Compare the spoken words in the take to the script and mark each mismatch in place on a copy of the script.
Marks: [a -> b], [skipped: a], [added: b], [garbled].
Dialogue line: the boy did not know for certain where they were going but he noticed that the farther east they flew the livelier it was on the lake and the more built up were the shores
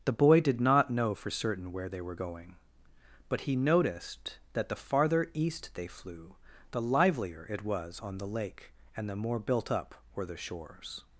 the boy did not know for certain where they were going but he noticed that the farther east they flew the livelier it was on the lake and the more built up were the shores